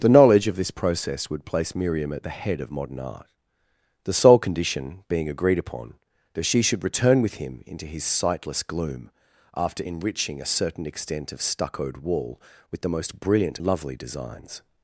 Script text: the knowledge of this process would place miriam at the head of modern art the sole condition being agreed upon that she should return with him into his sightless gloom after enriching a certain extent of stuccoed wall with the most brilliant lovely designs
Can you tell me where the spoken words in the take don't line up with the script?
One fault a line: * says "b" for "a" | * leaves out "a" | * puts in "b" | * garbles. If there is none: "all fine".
all fine